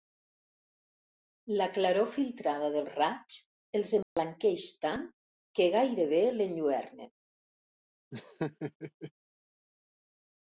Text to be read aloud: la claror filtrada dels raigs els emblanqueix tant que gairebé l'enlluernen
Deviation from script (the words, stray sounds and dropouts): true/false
true